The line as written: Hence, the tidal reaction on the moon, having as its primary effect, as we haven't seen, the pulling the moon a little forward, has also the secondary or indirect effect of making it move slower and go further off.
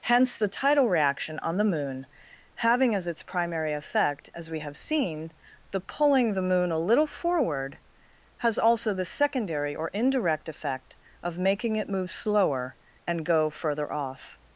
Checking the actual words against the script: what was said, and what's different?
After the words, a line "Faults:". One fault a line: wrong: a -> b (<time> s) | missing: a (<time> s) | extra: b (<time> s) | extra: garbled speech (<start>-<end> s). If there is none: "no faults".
Hence, the tidal reaction on the moon, having as its primary effect, as we have seen, the pulling the moon a little forward, has also the secondary or indirect effect of making it move slower and go further off.
Faults:
wrong: haven't -> have (4.6 s)